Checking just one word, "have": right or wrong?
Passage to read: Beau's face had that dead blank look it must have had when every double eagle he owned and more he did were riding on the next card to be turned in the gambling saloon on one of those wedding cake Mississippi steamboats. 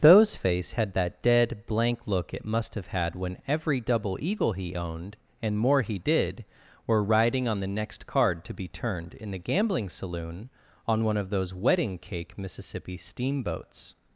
right